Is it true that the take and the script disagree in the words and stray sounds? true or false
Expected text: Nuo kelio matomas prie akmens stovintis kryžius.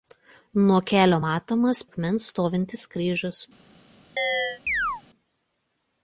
true